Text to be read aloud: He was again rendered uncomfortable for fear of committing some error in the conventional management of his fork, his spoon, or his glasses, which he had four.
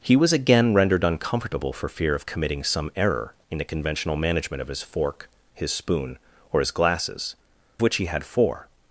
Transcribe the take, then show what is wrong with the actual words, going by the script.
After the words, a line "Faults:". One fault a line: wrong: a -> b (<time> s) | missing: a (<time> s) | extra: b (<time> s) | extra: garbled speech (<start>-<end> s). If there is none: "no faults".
He was again rendered uncomfortable for fear of committing some error in the conventional management of his fork, his spoon, or his glasses, which he had four.
Faults:
no faults